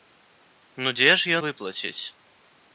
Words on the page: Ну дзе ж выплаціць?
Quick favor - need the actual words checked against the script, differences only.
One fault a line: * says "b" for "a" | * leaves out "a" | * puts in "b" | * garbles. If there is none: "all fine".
all fine